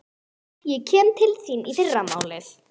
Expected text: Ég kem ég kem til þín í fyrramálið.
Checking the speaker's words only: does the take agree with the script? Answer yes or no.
no